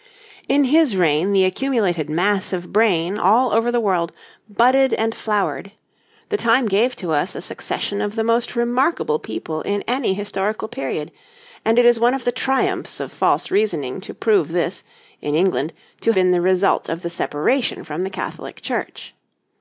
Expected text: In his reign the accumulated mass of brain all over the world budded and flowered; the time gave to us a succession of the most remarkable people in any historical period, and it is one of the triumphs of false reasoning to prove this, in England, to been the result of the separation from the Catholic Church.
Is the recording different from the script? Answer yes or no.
no